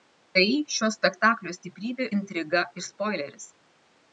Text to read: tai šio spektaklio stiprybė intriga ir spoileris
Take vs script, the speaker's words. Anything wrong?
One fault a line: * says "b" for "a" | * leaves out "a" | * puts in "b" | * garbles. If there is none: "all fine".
all fine